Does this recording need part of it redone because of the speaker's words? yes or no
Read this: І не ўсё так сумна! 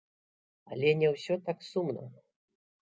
yes